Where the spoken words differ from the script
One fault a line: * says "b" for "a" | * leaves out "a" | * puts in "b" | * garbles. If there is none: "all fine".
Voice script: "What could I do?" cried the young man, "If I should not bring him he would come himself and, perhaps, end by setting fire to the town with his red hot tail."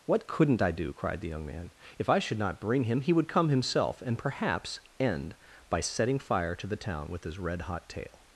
* says "couldn't" for "could"